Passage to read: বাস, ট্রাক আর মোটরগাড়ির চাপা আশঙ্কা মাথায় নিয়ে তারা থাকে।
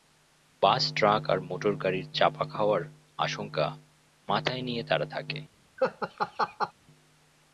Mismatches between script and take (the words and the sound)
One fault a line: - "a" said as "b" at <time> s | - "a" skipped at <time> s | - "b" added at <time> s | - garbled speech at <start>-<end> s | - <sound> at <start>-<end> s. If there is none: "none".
- "খাওয়ার" added at 2.4 s
- laugh at 5.8-6.7 s